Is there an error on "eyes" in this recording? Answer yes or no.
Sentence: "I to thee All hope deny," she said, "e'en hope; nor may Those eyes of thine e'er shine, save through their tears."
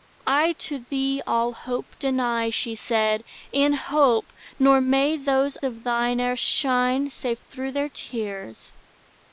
yes